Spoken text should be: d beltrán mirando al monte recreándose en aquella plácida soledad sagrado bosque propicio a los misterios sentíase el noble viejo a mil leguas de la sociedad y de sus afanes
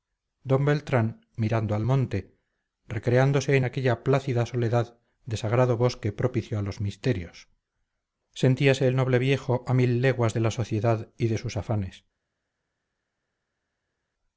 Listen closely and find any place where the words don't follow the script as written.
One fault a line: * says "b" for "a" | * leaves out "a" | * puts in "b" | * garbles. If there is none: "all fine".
* puts in "de"